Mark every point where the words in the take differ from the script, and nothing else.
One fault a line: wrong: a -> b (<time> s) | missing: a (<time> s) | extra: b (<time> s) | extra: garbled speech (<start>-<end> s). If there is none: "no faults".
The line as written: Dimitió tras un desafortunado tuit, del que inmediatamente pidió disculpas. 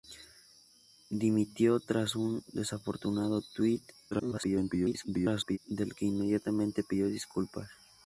extra: garbled speech (4.1-5.6 s)